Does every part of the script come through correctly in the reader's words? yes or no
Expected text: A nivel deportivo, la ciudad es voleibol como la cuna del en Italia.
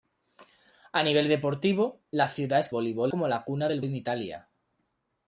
yes